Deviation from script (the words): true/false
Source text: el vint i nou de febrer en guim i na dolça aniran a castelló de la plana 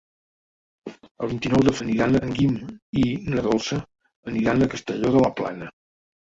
true